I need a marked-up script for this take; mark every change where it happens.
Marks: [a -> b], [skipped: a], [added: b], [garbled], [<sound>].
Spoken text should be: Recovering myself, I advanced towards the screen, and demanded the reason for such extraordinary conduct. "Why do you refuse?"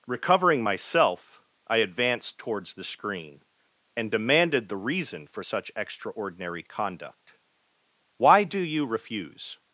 Recovering myself, I advanced towards the screen, and demanded the reason for such extraordinary conduct. "Why do you refuse?"